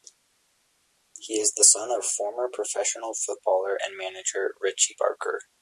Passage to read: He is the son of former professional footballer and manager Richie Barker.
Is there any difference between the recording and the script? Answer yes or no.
no